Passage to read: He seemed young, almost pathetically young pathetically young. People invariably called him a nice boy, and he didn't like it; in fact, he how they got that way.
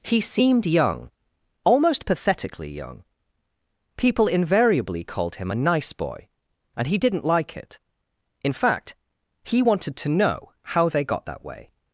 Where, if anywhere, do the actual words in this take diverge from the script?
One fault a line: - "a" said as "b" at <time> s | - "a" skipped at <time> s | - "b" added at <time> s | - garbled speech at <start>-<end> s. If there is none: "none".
- "pathetically young" skipped at 3.0 s
- "wanted to know" added at 9.6 s